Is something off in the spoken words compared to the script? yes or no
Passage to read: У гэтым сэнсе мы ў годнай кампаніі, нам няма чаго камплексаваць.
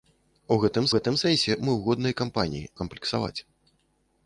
yes